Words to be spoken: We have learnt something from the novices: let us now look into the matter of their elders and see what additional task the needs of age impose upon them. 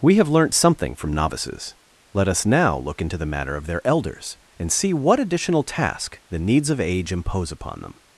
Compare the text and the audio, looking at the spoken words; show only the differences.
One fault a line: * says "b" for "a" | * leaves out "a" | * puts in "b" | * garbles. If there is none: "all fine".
* leaves out "the"